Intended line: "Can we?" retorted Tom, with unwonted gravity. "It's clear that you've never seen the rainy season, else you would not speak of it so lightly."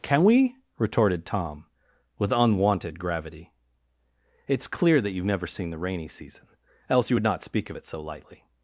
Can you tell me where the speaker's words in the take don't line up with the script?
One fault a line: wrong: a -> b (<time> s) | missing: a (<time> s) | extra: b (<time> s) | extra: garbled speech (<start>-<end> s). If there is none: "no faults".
no faults